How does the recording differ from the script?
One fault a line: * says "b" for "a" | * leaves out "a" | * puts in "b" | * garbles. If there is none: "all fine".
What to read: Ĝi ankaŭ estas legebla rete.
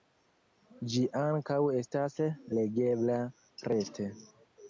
all fine